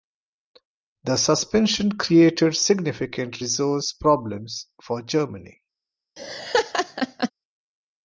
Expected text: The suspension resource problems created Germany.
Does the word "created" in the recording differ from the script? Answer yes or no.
yes